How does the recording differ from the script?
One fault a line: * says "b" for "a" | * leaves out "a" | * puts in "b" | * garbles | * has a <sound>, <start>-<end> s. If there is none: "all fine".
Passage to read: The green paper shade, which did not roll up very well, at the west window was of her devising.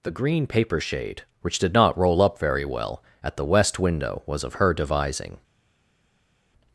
all fine